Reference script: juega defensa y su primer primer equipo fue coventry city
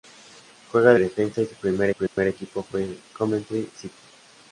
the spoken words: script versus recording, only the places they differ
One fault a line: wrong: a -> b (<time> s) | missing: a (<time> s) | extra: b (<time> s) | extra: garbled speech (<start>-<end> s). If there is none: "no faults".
no faults